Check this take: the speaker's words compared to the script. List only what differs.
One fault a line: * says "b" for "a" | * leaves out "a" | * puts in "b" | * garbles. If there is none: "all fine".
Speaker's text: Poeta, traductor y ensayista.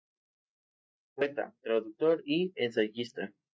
all fine